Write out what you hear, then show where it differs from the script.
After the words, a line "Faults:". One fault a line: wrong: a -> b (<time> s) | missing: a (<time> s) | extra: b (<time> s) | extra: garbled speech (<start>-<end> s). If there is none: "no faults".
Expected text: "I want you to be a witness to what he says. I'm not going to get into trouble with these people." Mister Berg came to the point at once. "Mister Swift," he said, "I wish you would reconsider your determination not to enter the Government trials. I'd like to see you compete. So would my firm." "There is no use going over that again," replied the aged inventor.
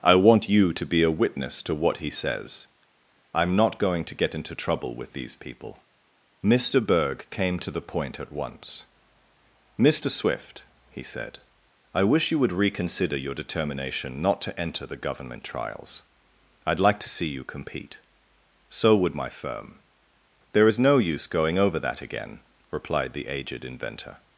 "I want you to be a witness to what he says. I'm not going to get into trouble with these people." Mister Berg came to the point at once. "Mister Swift," he said, "I wish you would reconsider your determination not to enter the Government trials. I'd like to see you compete. So would my firm." "There is no use going over that again," replied the aged inventor.
Faults:
no faults